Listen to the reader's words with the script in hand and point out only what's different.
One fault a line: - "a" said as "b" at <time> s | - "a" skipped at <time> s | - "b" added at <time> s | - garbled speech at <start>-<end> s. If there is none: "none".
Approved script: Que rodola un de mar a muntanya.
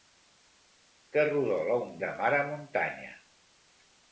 none